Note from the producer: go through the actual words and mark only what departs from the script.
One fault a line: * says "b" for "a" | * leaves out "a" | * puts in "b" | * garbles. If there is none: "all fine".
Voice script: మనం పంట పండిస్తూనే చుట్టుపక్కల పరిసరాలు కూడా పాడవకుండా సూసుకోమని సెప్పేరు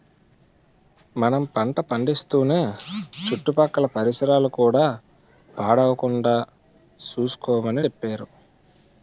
all fine